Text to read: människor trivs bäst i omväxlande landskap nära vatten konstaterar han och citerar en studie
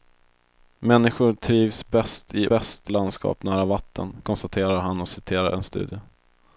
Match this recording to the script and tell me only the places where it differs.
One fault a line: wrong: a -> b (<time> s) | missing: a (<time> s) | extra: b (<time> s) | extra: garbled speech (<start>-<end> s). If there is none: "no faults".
wrong: omväxlande -> bäst (2.5 s)